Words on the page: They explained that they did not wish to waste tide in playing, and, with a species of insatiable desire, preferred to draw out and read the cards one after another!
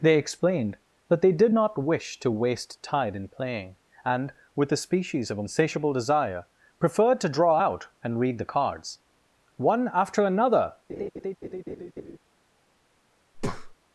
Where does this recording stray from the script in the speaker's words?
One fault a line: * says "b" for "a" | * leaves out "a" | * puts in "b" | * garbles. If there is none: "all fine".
all fine